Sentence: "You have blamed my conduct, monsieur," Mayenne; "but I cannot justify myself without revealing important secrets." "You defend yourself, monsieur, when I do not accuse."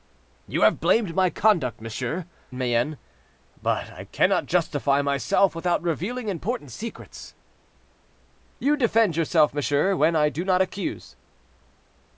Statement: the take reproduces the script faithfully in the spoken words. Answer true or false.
true